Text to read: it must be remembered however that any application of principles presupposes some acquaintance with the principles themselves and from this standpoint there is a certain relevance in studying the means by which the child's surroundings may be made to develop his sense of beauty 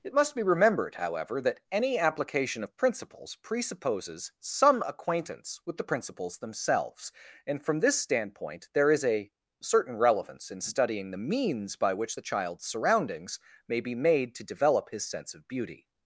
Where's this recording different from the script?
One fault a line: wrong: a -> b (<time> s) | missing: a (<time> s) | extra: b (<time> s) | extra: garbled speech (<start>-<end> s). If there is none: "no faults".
no faults